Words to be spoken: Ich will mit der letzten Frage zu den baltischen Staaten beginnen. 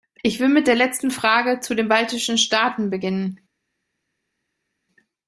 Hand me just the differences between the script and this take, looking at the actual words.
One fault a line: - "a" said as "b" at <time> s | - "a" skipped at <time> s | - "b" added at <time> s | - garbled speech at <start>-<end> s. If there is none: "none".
none